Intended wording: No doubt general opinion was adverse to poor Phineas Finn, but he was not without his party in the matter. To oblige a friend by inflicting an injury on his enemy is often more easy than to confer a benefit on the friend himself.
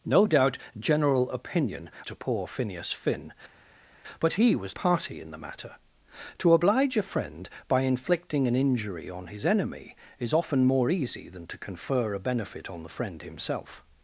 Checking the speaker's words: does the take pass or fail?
fail